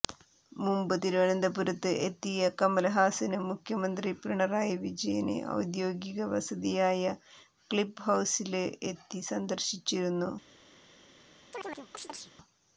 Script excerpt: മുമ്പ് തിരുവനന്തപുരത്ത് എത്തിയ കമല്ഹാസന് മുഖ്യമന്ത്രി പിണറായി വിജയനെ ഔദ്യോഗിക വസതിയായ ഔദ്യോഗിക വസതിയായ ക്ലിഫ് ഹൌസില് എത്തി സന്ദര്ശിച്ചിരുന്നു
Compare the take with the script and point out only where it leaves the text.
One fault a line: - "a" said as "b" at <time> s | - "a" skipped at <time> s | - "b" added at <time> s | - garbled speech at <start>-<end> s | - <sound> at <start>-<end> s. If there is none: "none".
- "ഔദ്യോഗിക വസതിയായ" skipped at 7.0 s
- chirp at 11.5-12.3 s